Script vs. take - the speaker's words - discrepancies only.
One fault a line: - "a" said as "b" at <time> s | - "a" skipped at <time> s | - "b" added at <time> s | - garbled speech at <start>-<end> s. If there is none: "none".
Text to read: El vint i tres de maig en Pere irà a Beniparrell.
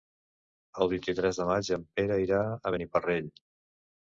none